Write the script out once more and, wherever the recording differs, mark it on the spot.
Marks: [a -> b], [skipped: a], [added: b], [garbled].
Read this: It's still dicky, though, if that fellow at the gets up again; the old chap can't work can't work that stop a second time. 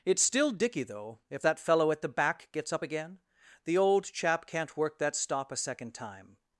It's still dicky, though, if that fellow at the [added: back] gets up again; the old chap can't work [skipped: can't work] that stop a second time.